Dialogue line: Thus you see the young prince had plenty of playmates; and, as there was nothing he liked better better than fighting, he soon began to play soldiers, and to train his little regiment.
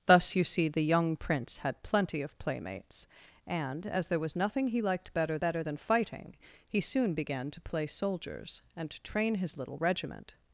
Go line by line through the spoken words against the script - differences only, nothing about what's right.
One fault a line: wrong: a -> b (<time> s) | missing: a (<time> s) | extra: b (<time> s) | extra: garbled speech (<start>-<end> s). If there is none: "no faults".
no faults